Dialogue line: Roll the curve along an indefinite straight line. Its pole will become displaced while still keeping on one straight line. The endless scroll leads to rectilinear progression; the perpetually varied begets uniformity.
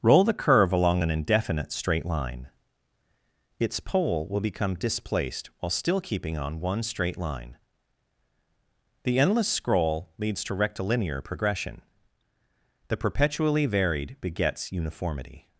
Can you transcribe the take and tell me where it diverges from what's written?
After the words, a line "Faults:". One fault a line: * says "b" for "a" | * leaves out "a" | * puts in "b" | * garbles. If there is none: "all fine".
Roll the curve along an indefinite straight line. Its pole will become displaced while still keeping on one straight line. The endless scroll leads to rectilinear progression; the perpetually varied begets uniformity.
Faults:
all fine